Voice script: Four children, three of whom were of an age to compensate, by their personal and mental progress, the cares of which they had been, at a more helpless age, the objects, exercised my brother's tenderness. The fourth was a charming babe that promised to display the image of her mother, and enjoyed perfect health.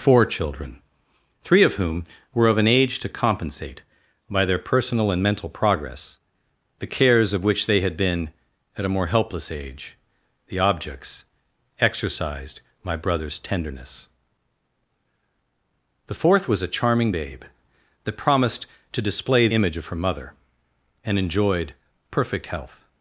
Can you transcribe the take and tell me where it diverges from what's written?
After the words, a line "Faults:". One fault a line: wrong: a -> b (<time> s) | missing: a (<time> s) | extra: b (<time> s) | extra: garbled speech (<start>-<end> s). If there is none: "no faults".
Four children, three of whom were of an age to compensate, by their personal and mental progress, the cares of which they had been, at a more helpless age, the objects, exercised my brother's tenderness. The fourth was a charming babe that promised to display image of her mother, and enjoyed perfect health.
Faults:
missing: the (19.5 s)